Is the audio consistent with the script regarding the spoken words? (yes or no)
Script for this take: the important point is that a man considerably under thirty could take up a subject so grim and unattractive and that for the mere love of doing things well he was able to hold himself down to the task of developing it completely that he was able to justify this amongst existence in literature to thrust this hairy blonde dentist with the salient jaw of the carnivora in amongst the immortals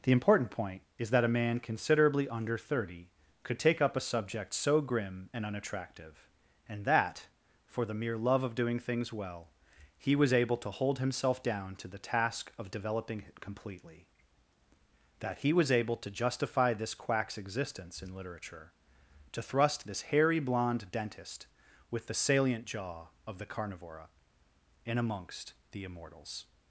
no